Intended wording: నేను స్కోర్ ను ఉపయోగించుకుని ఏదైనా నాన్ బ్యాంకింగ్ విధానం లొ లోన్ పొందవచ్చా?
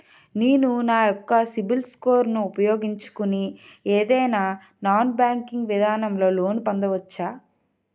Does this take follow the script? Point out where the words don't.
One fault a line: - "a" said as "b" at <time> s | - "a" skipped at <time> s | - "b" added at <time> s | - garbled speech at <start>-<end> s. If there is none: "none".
- "నా యెక్క సిబిల్" added at 0.8 s